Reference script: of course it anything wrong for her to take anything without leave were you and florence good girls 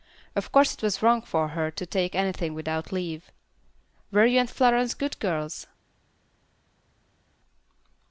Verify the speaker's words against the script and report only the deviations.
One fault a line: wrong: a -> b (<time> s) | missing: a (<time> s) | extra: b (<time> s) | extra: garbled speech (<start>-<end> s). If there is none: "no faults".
wrong: anything -> was (0.8 s)